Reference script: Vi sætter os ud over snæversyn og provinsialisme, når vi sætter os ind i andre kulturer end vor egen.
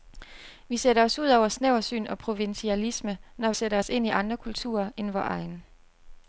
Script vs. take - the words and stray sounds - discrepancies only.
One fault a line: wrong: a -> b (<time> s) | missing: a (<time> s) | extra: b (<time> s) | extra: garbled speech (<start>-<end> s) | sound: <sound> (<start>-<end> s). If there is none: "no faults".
missing: vi (3.5 s)